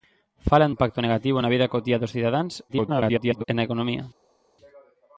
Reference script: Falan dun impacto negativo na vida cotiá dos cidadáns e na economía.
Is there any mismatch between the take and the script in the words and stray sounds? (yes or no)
yes